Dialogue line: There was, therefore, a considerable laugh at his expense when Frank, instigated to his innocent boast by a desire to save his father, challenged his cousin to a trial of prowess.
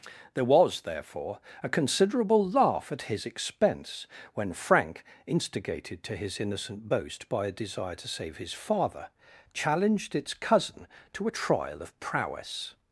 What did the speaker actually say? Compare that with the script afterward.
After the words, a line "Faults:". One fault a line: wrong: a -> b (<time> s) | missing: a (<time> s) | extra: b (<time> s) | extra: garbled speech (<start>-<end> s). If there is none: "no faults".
There was, therefore, a considerable laugh at his expense when Frank, instigated to his innocent boast by a desire to save his father, challenged its cousin to a trial of prowess.
Faults:
wrong: his -> its (10.2 s)